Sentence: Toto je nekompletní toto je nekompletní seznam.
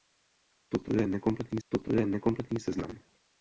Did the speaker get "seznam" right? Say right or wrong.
right